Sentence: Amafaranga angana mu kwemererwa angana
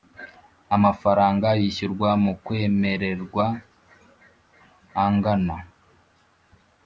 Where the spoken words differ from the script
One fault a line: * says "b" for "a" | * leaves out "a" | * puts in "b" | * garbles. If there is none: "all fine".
* says "yishyurwa" for "angana"